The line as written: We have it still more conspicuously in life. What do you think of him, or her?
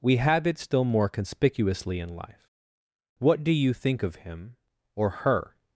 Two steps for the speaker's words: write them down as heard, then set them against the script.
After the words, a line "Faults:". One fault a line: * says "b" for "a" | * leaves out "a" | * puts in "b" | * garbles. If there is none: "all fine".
We have it still more conspicuously in life. What do you think of him, or her?
Faults:
all fine